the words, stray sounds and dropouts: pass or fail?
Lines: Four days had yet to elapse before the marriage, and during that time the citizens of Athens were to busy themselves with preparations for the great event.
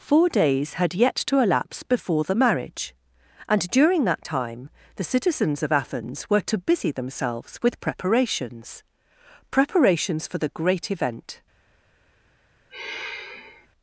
fail